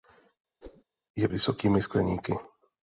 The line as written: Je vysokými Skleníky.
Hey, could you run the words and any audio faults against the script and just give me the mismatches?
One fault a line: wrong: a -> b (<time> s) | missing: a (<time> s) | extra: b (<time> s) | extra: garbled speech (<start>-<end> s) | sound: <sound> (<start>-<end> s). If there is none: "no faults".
sound: whoosh (0.6-0.8 s)